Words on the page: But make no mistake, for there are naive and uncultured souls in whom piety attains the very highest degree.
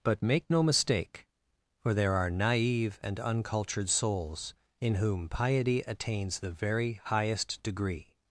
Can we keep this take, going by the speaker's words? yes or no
yes